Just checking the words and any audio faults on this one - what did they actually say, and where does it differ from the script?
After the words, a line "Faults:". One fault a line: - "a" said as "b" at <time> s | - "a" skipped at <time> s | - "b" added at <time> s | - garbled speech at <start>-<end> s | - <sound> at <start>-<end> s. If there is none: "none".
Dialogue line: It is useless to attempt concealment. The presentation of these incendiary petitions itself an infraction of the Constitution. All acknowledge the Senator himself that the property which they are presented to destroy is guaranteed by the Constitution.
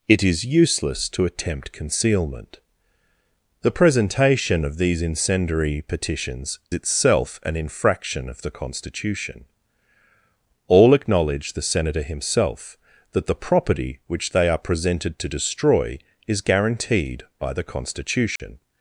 It is useless to attempt concealment. The presentation of these incendiary petitions itself an infraction of the Constitution. All acknowledge the Senator himself that the property which they are presented to destroy is guaranteed by the Constitution.
Faults:
- dropout at 18.4-18.4 s